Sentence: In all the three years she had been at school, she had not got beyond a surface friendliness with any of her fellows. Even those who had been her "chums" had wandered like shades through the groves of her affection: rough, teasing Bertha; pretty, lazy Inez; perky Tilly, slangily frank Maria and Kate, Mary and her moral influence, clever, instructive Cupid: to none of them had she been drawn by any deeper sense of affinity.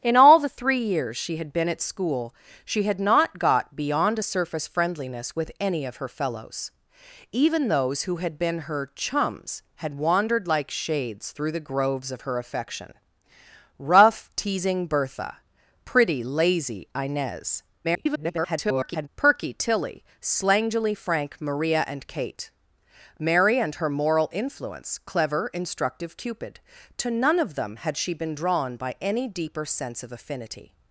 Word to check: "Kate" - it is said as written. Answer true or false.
true